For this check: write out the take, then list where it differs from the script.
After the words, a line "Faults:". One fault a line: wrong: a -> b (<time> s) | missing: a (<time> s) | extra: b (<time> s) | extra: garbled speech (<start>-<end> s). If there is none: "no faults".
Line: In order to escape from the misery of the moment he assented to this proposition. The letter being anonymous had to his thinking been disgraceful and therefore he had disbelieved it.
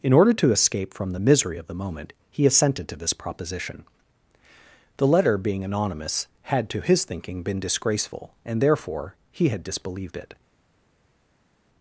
In order to escape from the misery of the moment he assented to this proposition. The letter being anonymous had to his thinking been disgraceful and therefore he had disbelieved it.
Faults:
no faults